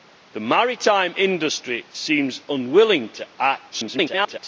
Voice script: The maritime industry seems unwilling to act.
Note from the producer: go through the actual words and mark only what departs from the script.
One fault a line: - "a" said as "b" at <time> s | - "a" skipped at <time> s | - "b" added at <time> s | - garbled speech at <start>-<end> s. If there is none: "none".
- garbled speech at 3.7-4.4 s